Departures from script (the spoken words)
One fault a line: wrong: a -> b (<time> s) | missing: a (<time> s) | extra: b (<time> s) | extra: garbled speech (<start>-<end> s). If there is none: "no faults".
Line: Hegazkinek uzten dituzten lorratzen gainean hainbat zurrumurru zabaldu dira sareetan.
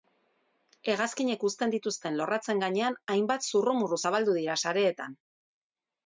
no faults